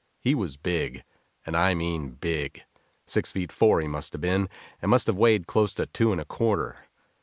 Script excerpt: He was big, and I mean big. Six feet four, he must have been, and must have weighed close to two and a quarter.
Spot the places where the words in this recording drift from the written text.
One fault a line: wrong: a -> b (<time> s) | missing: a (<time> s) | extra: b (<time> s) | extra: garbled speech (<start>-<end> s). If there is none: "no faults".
no faults